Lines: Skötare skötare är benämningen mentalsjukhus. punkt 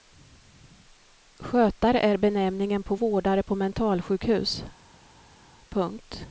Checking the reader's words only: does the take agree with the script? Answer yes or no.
no